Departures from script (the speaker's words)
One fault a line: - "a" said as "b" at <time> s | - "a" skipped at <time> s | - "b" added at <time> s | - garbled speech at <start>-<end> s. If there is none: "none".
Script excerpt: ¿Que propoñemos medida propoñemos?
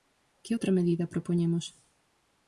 - "propoñemos" said as "outra" at 0.5 s